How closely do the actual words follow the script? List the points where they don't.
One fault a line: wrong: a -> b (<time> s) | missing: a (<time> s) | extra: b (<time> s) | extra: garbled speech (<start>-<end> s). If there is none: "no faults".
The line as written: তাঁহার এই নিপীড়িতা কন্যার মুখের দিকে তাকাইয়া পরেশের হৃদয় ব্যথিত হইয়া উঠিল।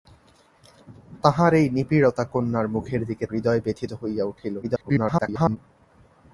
missing: তাকাইয়া পরেশের (3.2 s)
extra: garbled speech (4.6-5.6 s)